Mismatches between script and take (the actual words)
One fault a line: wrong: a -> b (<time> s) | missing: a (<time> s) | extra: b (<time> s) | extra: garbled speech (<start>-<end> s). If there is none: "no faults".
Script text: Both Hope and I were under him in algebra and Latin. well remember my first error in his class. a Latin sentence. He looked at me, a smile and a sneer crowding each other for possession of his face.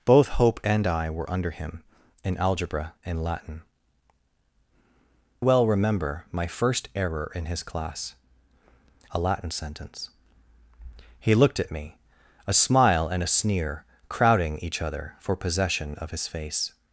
no faults